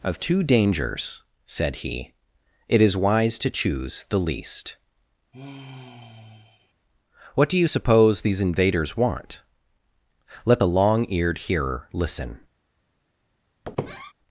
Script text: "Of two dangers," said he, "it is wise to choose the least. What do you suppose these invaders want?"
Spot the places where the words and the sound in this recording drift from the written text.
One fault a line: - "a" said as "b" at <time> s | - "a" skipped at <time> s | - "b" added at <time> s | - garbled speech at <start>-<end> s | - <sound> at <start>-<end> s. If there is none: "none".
- sigh at 5.3-6.7 s
- "Let the Long Eared Hearer listen" added at 10.4 s
- squeak at 13.6-14.1 s